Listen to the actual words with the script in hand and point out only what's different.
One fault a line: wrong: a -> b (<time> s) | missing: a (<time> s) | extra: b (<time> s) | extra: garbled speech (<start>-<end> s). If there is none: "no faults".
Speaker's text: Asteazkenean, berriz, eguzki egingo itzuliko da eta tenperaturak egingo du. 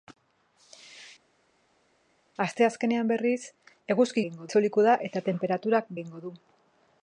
no faults